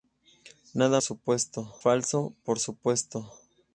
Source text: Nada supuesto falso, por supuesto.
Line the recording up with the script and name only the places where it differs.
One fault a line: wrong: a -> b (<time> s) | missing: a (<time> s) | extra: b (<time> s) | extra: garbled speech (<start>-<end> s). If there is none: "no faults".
no faults